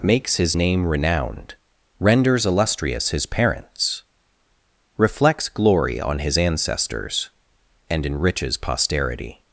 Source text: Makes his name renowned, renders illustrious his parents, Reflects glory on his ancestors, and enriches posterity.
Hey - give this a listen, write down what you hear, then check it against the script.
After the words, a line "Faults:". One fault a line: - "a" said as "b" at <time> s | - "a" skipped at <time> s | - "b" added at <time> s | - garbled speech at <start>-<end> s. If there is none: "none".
Makes his name renowned, renders illustrious his parents, Reflects glory on his ancestors, and enriches posterity.
Faults:
none